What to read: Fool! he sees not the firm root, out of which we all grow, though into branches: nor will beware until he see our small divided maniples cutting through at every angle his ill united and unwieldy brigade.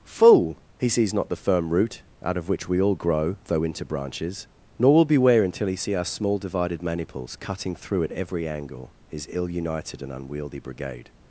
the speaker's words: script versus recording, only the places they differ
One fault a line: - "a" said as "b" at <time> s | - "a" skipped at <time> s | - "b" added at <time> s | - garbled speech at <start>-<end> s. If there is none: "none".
none